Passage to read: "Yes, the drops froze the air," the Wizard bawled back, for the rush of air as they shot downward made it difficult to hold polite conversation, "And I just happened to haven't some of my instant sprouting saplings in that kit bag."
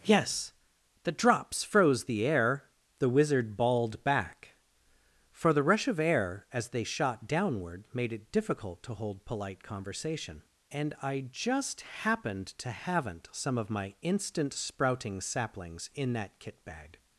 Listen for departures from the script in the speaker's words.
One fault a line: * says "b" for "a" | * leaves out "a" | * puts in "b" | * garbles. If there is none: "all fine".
all fine